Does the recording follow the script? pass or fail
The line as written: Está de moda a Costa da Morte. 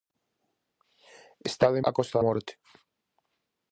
fail